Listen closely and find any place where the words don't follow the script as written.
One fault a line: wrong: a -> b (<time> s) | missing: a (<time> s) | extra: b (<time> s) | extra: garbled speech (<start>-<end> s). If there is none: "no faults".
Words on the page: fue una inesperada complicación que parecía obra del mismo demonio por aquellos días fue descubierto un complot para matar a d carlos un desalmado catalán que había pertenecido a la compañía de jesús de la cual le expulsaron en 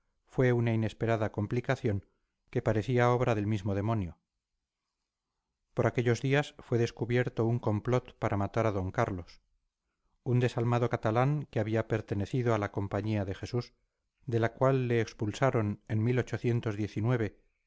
no faults